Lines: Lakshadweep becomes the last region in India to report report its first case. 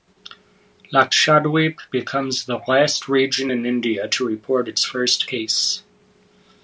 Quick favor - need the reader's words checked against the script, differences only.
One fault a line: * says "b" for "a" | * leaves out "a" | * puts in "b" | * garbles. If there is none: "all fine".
* leaves out "report"